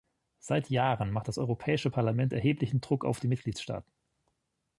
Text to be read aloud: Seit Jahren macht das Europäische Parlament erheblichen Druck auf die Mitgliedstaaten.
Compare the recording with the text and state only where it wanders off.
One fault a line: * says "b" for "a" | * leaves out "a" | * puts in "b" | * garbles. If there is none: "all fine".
all fine